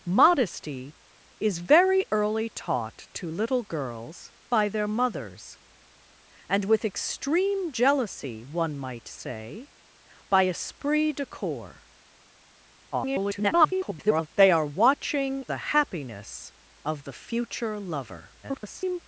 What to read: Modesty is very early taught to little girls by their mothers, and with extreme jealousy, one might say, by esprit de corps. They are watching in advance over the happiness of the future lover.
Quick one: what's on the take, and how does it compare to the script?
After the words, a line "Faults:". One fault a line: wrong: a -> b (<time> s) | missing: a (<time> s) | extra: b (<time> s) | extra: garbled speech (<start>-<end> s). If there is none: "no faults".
Modesty is very early taught to little girls by their mothers, and with extreme jealousy, one might say, by esprit de corps. [garbled] They are watching the happiness of the future lover. [garbled]
Faults:
extra: garbled speech (12.9-14.3 s)
missing: in advance over (15.4 s)
extra: garbled speech (18.4-19.0 s)